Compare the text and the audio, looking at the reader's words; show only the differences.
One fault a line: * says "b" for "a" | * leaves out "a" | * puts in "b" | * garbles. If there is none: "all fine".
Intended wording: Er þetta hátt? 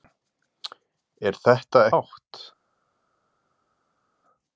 all fine